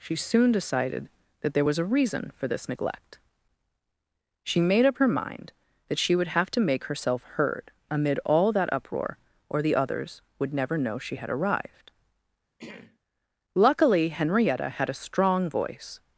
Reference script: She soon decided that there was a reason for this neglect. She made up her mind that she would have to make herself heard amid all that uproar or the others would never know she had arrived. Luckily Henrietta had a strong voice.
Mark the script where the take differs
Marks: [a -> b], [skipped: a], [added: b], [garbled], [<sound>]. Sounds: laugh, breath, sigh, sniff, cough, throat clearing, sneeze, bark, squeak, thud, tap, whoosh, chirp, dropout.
She soon decided that there was a reason for this neglect. She made up her mind that she would have to make herself heard amid all that uproar or the others would never know she had arrived. [throat clearing] Luckily Henrietta had a strong voice.